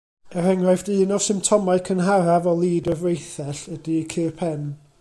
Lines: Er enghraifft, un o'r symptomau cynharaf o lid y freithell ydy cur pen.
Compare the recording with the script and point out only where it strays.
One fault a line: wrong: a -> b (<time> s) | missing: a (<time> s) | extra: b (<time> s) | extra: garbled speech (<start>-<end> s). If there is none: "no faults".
no faults